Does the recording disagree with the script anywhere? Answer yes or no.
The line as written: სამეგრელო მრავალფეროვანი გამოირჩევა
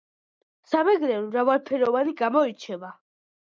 no